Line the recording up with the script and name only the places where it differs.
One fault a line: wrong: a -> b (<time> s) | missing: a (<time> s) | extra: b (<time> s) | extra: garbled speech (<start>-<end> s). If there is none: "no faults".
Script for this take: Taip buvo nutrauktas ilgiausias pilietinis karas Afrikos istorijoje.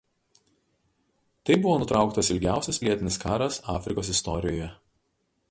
no faults